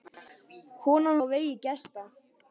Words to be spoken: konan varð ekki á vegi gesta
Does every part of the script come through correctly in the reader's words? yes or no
no